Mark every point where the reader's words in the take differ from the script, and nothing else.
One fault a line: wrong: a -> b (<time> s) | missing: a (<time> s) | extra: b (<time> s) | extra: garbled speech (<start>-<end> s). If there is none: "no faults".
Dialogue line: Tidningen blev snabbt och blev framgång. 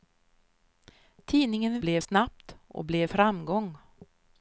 no faults